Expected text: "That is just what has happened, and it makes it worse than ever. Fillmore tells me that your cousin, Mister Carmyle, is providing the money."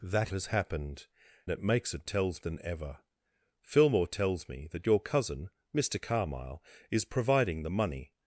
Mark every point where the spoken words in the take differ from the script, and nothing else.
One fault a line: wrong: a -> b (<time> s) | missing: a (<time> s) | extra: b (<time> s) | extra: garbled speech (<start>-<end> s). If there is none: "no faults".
missing: is just what (0.3 s)
missing: and (1.1 s)
wrong: worse -> tells (2.0 s)